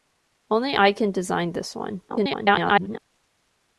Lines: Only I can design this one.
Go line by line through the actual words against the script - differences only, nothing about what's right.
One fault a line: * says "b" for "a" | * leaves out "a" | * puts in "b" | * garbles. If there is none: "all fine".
* garbles